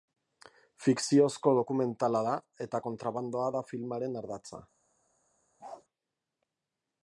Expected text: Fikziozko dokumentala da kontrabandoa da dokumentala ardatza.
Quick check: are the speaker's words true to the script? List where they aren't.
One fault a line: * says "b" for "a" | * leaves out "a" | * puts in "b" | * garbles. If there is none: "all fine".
* puts in "eta"
* says "filmaren" for "dokumentala"